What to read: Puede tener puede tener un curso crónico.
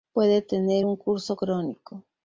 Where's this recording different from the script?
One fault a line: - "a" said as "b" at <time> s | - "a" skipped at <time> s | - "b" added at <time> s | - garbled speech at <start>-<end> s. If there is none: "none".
- "puede tener" skipped at 0.9 s